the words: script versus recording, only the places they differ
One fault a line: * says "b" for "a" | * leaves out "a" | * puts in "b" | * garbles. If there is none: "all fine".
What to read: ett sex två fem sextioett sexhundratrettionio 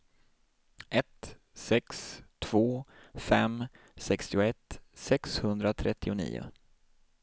all fine